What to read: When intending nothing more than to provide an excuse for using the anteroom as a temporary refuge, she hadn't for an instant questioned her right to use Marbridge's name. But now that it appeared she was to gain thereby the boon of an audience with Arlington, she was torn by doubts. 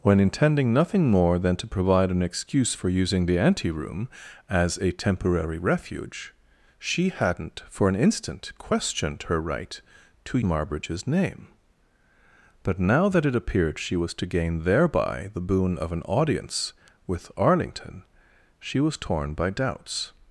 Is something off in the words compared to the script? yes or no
yes